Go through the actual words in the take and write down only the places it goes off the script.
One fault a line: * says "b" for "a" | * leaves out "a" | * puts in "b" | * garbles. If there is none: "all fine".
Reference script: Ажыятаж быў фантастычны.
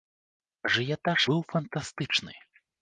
all fine